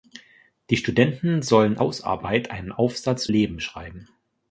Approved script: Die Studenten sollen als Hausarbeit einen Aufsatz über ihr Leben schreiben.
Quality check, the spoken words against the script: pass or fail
fail